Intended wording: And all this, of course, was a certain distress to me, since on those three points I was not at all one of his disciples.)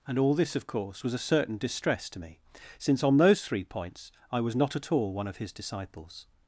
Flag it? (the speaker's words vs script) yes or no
no